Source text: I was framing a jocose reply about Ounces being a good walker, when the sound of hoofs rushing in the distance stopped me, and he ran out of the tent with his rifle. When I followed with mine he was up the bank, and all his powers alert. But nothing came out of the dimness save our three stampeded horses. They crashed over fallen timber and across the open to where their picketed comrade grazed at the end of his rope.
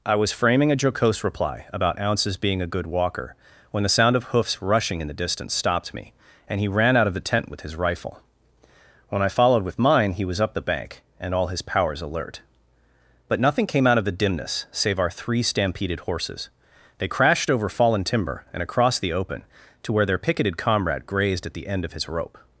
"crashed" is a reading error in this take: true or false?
false